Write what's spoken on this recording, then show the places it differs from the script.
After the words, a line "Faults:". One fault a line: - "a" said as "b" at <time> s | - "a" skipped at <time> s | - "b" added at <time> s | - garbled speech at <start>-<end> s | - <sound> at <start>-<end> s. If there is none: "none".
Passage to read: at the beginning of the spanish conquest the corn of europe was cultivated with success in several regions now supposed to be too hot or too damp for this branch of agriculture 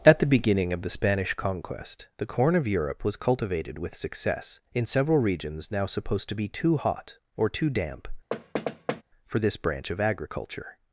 at the beginning of the spanish conquest the corn of europe was cultivated with success in several regions now supposed to be too hot or too damp for this branch of agriculture
Faults:
- thud at 8.3-9.0 s